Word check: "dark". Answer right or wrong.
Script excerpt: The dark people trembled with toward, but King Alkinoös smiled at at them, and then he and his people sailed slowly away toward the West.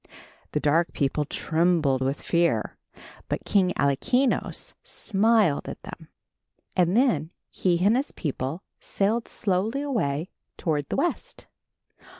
right